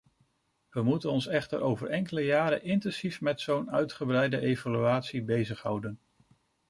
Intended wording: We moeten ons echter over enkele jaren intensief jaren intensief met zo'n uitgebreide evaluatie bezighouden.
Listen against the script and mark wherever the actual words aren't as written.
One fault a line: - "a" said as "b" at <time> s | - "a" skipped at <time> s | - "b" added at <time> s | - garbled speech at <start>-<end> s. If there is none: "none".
- "jaren intensief" skipped at 3.2 s